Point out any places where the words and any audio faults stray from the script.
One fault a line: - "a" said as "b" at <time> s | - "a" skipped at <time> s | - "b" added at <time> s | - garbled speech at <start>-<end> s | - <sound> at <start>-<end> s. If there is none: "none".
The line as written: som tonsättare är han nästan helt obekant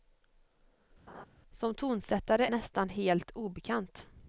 - laugh at 1.1-1.3 s
- "är han" skipped at 2.5 s